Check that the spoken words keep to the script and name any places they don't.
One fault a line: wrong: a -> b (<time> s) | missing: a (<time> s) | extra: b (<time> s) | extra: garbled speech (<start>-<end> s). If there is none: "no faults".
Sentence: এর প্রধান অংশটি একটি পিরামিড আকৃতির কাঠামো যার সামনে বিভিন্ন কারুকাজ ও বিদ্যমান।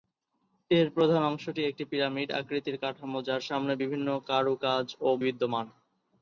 no faults